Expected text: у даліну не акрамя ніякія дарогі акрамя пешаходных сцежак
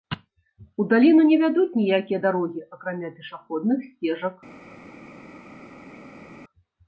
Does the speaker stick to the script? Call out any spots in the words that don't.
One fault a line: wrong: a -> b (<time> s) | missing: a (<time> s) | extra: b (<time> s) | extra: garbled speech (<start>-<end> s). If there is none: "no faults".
wrong: акрамя -> вядуць (1.4 s)